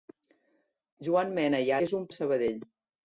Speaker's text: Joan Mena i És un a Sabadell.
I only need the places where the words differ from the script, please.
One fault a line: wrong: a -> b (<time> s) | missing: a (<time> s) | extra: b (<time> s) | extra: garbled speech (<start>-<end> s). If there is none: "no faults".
no faults